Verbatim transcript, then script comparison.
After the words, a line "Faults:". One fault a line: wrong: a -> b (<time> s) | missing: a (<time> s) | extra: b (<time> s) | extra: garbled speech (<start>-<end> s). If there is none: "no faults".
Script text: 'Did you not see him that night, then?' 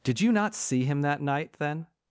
'Did you not see him that night, then?'
Faults:
no faults